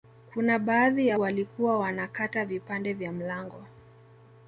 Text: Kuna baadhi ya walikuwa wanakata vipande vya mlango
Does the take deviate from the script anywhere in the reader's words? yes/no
no